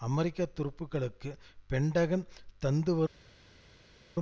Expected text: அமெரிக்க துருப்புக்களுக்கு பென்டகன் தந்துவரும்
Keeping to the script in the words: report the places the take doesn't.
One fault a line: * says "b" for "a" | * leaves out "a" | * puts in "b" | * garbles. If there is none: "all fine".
all fine